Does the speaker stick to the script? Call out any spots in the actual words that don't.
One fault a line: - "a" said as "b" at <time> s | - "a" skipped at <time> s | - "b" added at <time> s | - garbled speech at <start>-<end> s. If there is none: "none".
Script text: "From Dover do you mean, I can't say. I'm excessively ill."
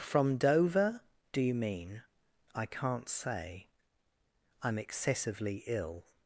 none